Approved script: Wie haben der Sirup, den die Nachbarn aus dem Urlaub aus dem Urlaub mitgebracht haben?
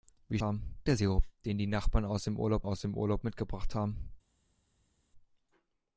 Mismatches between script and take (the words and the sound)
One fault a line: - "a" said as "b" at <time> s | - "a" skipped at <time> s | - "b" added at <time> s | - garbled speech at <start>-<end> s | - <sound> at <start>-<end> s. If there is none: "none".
none